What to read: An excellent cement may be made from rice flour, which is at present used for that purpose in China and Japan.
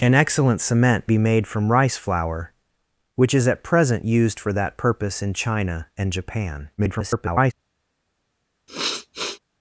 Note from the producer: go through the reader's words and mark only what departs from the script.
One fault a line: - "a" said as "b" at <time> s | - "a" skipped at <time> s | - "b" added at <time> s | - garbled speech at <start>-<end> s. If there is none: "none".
- "may" skipped at 1.1 s
- garbled speech at 6.8-7.5 s